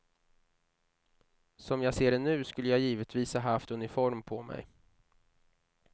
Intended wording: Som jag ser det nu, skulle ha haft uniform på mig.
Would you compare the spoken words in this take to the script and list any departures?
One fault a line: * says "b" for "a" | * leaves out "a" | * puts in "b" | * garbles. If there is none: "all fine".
* puts in "jag givetvis"